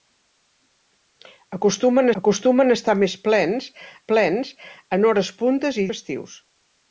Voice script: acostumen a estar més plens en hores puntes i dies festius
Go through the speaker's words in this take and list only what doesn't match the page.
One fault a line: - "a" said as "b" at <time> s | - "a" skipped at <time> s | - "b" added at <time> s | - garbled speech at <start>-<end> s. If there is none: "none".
- "acostumen" added at 2.2 s
- "plens" added at 4.1 s
- "dies" skipped at 5.9 s